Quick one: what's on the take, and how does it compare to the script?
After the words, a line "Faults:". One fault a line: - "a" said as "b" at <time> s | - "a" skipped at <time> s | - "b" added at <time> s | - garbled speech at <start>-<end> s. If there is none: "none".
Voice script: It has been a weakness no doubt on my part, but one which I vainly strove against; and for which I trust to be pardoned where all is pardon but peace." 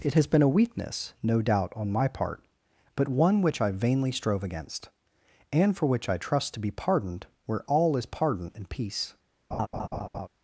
It has been a weakness no doubt on my part, but one which I vainly strove against; and for which I trust to be pardoned where all is pardon and peace."
Faults:
- "but" said as "and" at 8.6 s